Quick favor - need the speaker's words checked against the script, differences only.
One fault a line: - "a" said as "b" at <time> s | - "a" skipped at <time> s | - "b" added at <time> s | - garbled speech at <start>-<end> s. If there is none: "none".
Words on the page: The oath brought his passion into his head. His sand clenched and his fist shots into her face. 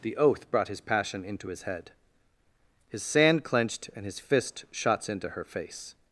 none